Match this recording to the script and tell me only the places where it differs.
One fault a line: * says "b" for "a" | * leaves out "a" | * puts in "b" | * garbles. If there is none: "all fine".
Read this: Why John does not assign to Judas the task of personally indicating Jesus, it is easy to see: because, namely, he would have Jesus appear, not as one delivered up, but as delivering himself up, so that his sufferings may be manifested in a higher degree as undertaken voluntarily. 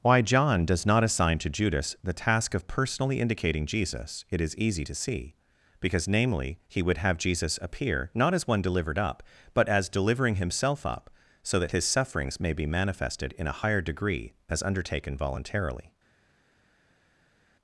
all fine